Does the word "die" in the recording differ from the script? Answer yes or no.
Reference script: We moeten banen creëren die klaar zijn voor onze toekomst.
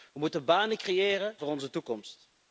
yes